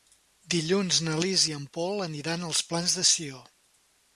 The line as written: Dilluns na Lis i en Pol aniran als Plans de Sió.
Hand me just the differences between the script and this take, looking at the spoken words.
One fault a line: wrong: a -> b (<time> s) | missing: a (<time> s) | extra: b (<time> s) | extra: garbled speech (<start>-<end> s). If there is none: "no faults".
no faults